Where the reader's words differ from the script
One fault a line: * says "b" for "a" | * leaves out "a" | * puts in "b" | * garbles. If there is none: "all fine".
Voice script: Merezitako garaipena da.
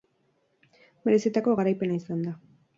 * puts in "izan"